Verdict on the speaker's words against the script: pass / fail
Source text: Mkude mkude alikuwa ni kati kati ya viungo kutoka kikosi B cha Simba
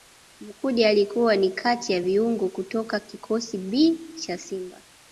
fail